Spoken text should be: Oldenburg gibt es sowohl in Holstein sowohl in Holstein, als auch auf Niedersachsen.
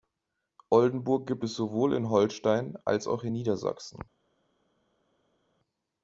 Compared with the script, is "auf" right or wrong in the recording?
wrong